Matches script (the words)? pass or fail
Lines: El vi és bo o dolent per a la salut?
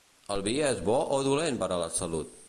pass